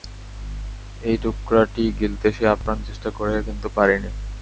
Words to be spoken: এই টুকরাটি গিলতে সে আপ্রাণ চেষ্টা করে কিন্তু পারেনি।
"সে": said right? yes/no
yes